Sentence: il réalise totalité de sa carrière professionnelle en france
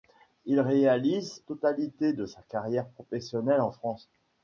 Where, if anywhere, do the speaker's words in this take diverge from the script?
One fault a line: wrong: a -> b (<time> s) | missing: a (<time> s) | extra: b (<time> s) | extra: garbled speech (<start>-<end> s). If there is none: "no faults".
no faults